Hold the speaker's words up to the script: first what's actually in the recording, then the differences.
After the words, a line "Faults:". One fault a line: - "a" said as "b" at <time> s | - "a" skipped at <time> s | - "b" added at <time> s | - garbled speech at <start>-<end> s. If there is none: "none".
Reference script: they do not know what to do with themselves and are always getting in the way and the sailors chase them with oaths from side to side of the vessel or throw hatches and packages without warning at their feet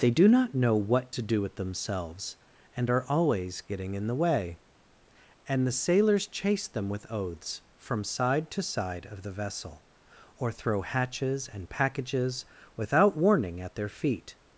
they do not know what to do with themselves and are always getting in the way and the sailors chase them with oaths from side to side of the vessel or throw hatches and packages without warning at their feet
Faults:
none